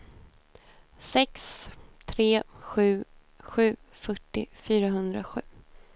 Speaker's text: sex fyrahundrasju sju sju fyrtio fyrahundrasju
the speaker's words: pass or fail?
fail